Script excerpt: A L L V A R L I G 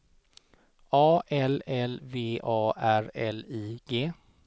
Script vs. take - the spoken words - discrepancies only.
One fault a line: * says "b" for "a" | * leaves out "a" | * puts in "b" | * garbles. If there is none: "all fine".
all fine